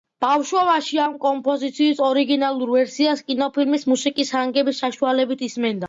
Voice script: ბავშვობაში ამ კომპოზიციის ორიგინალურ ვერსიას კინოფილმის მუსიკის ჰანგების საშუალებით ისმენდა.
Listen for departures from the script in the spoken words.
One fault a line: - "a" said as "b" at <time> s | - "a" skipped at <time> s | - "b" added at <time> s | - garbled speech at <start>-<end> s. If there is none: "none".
none